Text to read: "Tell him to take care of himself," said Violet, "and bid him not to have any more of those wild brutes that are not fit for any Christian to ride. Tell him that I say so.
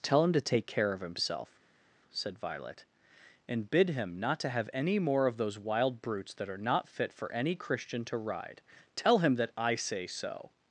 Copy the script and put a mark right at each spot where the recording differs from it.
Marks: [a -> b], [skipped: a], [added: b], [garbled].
"Tell him to take care of himself," said Violet, "and bid him not to have any more of those wild brutes that are not fit for any Christian to ride. Tell him that I say so.